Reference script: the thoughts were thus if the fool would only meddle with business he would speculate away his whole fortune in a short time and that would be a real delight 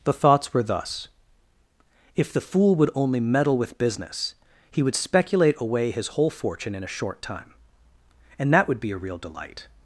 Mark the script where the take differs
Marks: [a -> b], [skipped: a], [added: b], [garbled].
the thoughts were thus if the fool would only meddle with business he would speculate away his whole fortune in a short time and that would be a real delight